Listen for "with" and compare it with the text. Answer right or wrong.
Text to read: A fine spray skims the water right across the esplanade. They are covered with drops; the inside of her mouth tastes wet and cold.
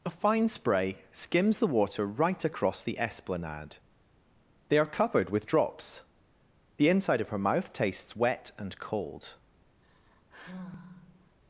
right